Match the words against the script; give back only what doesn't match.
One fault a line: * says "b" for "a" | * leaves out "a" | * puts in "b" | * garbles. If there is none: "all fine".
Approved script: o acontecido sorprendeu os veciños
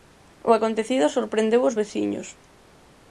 all fine